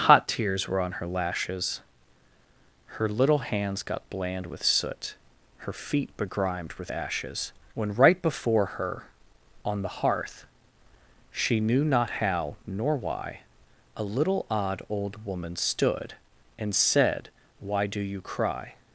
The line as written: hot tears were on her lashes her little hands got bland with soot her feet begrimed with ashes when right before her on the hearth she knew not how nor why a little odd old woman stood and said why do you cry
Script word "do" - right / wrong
right